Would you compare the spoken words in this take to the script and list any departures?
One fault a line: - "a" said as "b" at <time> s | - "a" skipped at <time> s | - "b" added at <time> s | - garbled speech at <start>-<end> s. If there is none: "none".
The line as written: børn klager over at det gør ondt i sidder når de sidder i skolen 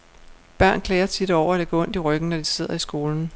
- "tit" added at 1.1 s
- "sidder" said as "ryggen" at 2.0 s